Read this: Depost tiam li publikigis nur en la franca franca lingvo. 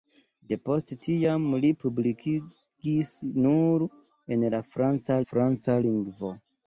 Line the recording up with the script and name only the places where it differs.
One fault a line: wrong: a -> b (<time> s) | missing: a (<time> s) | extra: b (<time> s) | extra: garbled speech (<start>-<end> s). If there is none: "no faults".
no faults